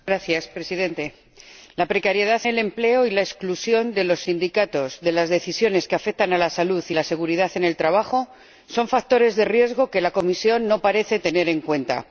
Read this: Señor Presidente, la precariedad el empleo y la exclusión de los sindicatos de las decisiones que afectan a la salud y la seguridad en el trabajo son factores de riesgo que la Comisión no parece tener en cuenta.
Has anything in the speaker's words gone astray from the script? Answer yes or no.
no